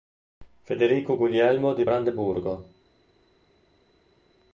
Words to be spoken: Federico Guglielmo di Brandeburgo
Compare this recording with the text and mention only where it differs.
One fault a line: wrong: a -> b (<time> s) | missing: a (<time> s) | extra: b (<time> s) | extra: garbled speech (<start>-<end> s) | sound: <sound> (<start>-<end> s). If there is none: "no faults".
no faults